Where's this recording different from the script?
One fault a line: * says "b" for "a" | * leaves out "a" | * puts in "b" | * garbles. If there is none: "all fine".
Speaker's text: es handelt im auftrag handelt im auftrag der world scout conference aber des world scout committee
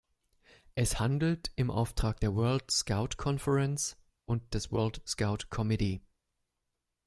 * leaves out "handelt im auftrag"
* says "und" for "aber"